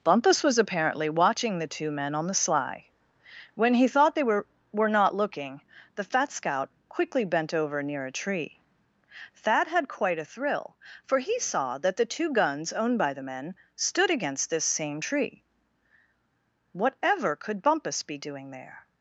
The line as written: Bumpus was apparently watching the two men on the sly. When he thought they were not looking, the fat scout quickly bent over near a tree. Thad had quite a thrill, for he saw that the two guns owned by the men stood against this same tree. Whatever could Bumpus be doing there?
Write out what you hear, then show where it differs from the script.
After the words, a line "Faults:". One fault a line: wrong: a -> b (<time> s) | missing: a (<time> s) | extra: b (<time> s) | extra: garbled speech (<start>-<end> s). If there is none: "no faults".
Bumpus was apparently watching the two men on the sly. When he thought they were were not looking, the fat scout quickly bent over near a tree. Thad had quite a thrill, for he saw that the two guns owned by the men stood against this same tree. Whatever could Bumpus be doing there?
Faults:
extra: were (4.7 s)